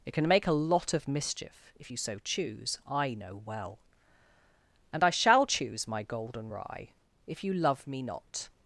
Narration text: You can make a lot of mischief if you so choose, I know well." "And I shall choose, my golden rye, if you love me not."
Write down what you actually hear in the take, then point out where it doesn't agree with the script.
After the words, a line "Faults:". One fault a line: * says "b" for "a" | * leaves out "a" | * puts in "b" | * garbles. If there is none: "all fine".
It can make a lot of mischief if you so choose, I know well." "And I shall choose, my golden rye, if you love me not."
Faults:
* says "It" for "You"